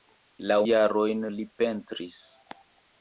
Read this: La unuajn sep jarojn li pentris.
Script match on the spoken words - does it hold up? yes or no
no